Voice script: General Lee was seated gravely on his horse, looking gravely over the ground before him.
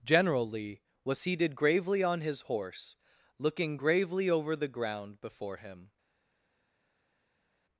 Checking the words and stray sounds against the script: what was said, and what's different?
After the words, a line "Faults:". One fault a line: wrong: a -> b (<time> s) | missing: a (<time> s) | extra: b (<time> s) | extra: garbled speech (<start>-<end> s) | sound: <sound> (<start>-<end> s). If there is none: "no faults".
General Lee was seated gravely on his horse, looking gravely over the ground before him.
Faults:
no faults